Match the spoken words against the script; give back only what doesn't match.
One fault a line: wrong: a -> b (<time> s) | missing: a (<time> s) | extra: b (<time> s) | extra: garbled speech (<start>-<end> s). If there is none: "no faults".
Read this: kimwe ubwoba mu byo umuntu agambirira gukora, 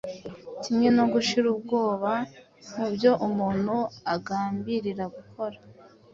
extra: no gushira (1.0 s)